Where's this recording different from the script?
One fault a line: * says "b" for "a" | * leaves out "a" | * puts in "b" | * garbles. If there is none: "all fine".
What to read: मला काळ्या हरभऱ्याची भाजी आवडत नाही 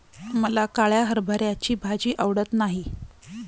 all fine